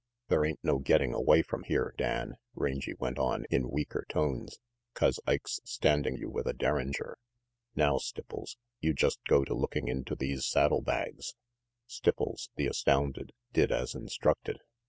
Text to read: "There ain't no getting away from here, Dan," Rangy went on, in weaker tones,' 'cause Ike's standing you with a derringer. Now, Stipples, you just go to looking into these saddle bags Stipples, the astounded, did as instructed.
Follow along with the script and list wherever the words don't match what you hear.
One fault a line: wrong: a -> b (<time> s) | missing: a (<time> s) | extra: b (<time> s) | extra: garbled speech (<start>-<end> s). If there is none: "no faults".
no faults